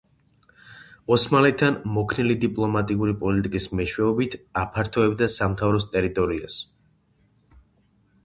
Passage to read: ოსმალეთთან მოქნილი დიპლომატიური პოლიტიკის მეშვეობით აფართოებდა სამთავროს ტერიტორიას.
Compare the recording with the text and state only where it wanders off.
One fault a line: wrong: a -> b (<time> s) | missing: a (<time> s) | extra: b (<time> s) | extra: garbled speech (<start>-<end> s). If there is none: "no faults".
no faults